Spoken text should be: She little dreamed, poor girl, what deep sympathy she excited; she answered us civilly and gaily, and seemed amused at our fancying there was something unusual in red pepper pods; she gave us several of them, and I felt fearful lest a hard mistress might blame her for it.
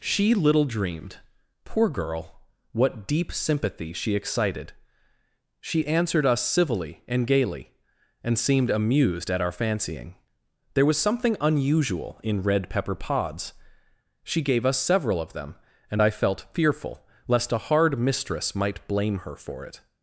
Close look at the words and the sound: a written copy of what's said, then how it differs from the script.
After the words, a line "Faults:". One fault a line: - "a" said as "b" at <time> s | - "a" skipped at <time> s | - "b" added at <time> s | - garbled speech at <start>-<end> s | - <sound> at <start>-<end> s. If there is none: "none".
She little dreamed, poor girl, what deep sympathy she excited; she answered us civilly and gaily, and seemed amused at our fancying there was something unusual in red pepper pods; she gave us several of them, and I felt fearful lest a hard mistress might blame her for it.
Faults:
none